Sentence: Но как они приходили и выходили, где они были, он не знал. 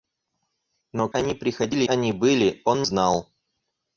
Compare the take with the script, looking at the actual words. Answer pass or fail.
fail